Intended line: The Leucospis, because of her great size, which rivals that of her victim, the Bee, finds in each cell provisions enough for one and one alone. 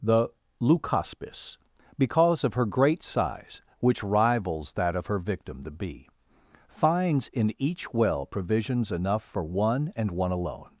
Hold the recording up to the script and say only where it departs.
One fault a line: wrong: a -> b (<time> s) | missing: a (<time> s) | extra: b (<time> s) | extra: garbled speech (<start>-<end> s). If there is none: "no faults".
wrong: cell -> well (7.9 s)